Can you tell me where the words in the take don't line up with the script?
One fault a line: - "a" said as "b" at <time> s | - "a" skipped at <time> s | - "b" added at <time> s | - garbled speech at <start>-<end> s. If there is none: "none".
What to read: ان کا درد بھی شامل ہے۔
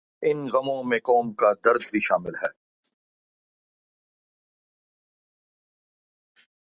- "غموں میں قوم" added at 0.5 s